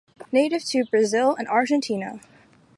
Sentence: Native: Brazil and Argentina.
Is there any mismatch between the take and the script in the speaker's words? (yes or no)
yes